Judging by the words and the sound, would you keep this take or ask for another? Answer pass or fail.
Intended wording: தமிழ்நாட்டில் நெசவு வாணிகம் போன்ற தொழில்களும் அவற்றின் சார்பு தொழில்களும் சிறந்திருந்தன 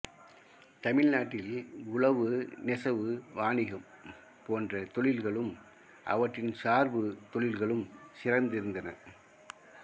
fail